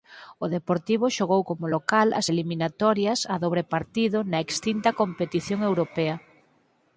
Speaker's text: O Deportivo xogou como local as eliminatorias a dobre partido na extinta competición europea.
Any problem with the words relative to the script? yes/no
no